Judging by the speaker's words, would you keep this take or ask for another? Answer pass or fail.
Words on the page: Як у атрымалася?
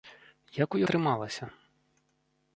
pass